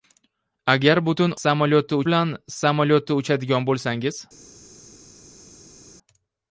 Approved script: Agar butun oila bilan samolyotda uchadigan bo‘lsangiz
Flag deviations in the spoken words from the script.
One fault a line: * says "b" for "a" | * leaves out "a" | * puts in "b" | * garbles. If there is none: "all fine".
* says "samolyotda" for "oila"